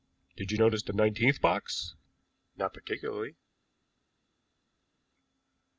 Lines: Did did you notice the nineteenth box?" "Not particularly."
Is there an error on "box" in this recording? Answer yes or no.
no